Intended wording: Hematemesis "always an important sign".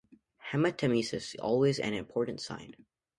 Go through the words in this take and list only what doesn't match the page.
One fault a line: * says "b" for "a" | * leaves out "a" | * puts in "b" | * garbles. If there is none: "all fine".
all fine